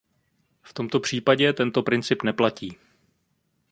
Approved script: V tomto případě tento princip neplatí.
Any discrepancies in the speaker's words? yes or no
no